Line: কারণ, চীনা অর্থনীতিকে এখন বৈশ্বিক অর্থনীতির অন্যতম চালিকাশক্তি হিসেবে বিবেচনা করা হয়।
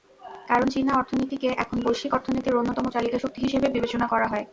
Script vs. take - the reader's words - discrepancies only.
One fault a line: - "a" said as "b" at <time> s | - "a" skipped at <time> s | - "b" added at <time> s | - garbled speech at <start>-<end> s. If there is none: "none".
none